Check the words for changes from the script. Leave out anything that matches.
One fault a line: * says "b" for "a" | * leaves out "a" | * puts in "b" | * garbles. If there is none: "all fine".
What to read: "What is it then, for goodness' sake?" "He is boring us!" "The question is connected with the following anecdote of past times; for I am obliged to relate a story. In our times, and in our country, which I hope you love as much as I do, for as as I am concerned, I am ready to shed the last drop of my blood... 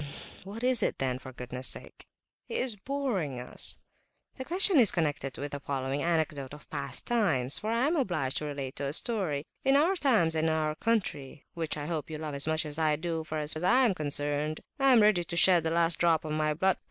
all fine